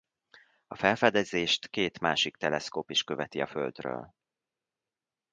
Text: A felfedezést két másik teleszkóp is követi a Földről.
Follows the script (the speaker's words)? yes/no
yes